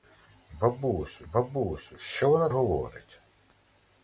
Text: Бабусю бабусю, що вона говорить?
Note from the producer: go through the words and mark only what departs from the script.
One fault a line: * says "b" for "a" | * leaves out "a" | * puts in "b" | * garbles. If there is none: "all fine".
all fine